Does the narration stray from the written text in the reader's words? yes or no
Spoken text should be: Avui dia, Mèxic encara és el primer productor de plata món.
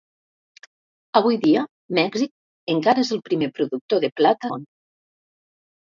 no